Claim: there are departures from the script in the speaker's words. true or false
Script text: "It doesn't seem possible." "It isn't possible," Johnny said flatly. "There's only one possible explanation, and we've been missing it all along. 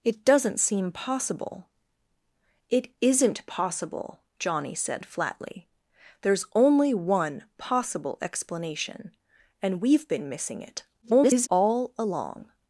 true